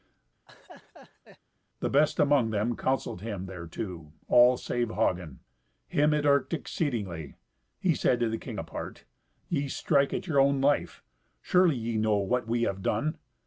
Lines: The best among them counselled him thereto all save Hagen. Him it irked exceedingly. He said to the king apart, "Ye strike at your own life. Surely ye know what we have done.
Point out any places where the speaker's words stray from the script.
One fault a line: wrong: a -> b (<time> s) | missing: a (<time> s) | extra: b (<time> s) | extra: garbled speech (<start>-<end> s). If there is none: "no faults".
no faults